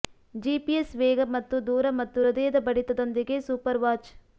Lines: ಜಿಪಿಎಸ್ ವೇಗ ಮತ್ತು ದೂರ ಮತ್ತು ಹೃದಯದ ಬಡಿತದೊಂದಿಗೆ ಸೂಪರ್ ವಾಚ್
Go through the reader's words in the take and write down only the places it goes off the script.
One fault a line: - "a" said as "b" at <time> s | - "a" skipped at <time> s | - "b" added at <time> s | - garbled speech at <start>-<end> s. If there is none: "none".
none